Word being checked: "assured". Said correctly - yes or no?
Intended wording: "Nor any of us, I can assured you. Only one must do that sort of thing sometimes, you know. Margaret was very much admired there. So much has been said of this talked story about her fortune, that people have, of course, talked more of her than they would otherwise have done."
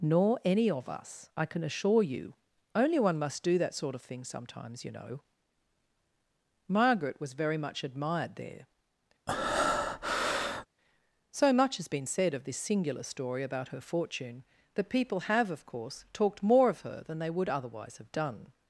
no